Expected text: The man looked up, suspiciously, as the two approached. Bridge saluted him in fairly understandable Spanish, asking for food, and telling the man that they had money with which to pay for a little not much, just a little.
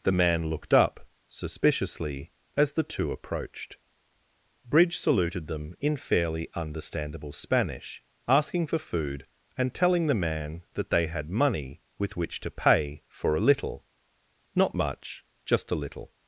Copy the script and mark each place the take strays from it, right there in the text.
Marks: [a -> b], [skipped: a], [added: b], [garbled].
The man looked up, suspiciously, as the two approached. Bridge saluted [him -> them] in fairly understandable Spanish, asking for food, and telling the man that they had money with which to pay for a little not much, just a little.